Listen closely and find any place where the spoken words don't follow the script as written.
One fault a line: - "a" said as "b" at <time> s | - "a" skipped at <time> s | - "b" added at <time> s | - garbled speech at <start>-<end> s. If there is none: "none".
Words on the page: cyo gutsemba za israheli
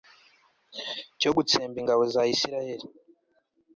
- "ingabo" added at 1.8 s